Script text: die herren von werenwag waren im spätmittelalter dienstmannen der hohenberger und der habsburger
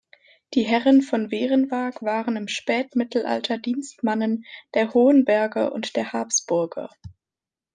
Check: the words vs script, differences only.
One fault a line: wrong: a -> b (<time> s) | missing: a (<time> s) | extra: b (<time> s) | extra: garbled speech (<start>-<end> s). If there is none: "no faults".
no faults